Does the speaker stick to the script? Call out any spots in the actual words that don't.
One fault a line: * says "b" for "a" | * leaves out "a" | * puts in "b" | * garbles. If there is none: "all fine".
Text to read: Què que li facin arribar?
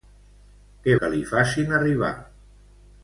all fine